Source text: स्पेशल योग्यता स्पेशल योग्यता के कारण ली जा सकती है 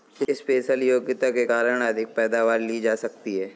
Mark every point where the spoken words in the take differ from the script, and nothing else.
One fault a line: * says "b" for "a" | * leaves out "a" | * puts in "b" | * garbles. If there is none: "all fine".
* says "के कारण अधिक पैदावार" for "स्पेशल योग्यता के कारण"